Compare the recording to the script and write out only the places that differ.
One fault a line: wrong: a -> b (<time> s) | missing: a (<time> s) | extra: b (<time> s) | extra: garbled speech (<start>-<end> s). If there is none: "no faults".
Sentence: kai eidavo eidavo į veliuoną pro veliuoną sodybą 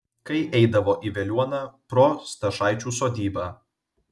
missing: eidavo (0.9 s)
wrong: veliuoną -> stašaičių (2.3 s)